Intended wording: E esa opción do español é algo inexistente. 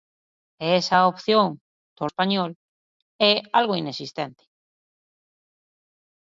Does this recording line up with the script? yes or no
yes